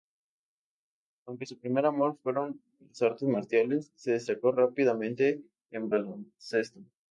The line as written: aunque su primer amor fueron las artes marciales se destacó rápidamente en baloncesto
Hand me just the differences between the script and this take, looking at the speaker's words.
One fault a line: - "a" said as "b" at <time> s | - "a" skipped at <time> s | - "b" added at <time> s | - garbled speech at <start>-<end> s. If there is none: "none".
none